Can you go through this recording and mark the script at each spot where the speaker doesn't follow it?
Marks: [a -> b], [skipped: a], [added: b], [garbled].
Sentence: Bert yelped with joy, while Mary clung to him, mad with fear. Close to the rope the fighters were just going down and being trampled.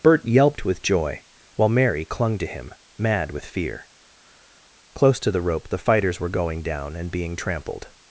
Bert yelped with joy, while Mary clung to him, mad with fear. Close to the rope the fighters were [skipped: just] going down and being trampled.